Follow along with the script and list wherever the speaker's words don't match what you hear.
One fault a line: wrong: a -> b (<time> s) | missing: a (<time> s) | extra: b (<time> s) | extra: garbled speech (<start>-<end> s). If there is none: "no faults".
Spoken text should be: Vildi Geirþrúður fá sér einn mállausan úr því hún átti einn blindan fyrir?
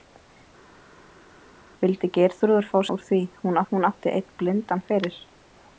missing: sér einn mállausan (2.8 s)
extra: hún (3.7 s)